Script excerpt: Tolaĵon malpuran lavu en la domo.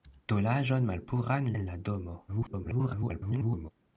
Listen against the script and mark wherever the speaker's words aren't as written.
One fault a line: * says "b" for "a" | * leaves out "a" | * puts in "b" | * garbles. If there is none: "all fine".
* leaves out "lavu"
* garbles